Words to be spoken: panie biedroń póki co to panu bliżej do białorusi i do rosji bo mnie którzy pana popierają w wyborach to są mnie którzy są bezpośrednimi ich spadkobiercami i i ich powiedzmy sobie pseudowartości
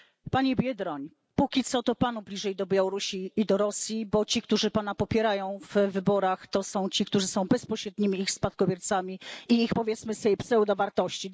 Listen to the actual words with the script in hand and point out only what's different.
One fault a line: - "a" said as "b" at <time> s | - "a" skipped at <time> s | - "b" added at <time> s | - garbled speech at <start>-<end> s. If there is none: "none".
- "mnie" said as "ci" at 4.2 s
- "mnie" said as "ci" at 6.9 s
- "i" skipped at 9.6 s